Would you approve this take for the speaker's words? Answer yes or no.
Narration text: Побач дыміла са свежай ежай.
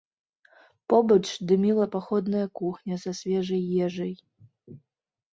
no